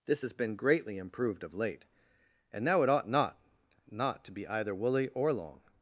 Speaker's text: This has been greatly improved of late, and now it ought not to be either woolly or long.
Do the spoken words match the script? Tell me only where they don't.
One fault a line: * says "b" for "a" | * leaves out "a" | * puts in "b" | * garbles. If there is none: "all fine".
* puts in "not"